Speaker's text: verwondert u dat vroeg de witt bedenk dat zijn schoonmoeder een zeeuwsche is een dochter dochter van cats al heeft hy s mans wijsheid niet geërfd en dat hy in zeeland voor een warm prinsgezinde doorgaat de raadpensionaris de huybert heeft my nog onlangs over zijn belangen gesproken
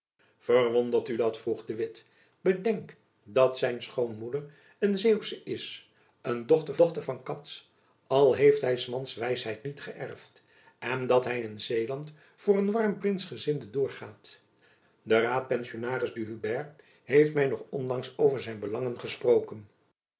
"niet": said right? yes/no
yes